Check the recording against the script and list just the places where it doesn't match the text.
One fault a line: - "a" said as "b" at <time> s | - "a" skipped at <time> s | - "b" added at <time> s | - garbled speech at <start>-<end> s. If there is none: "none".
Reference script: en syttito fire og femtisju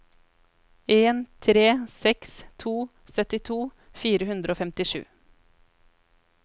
- "tre seks to" added at 1.4 s
- "hundre" added at 4.3 s